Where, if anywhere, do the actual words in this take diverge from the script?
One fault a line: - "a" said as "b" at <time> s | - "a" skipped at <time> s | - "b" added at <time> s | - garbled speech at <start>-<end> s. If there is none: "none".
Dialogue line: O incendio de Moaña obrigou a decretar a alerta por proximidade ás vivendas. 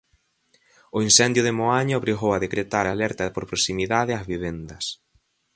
none